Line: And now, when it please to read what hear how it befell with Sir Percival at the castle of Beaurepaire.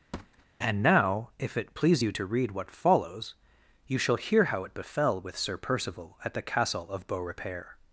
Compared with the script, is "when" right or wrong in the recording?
wrong